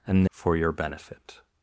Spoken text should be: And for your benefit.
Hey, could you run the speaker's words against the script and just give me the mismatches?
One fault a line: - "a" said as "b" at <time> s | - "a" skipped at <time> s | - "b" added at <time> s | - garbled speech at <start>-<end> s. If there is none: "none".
none